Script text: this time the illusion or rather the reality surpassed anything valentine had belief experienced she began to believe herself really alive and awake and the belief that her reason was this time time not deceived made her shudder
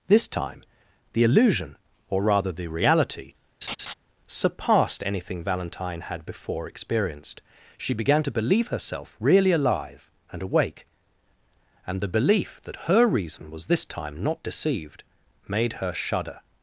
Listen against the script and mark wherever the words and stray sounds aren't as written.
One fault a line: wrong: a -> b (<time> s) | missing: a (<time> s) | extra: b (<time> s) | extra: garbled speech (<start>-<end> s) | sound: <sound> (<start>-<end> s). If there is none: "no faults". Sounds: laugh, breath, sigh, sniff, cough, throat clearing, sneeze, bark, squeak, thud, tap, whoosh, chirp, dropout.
sound: laugh (3.6-3.9 s)
wrong: belief -> before (6.2 s)
missing: time (14.2 s)